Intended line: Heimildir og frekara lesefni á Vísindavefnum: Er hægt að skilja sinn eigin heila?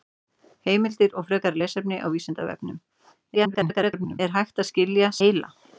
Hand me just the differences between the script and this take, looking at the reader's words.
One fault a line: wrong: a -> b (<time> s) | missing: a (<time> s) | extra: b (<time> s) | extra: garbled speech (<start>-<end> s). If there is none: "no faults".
extra: garbled speech (3.3-4.2 s)
missing: sinn eigin (5.1 s)